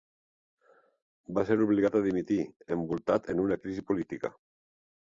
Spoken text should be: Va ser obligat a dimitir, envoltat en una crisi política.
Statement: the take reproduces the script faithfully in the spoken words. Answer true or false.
true